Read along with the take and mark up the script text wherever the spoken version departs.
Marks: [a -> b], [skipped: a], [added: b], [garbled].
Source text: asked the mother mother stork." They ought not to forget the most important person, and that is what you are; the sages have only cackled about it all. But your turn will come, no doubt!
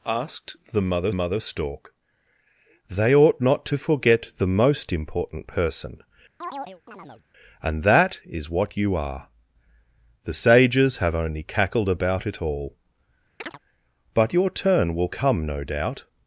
asked the mother mother stork." They ought not to forget the most important person, and that is what you are; the sages have only cackled about it all. But your turn will come, no doubt!